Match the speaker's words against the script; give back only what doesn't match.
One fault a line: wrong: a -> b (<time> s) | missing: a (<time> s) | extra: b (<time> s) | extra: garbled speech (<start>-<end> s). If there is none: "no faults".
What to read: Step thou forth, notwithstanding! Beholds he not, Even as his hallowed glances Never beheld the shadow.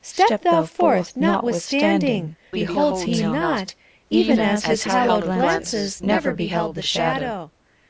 no faults